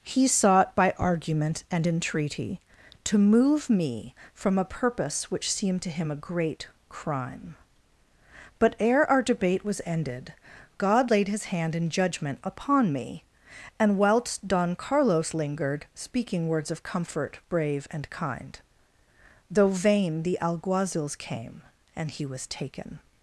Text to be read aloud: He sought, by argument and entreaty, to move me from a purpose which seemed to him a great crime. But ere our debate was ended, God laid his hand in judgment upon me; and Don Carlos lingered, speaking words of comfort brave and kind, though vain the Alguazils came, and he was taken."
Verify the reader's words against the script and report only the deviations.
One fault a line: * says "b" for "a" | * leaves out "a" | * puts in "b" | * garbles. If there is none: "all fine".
* puts in "whilst"